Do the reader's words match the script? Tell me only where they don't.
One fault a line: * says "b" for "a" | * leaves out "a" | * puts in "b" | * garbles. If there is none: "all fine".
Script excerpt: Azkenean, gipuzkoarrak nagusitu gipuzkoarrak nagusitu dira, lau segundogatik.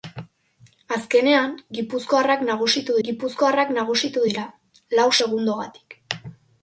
all fine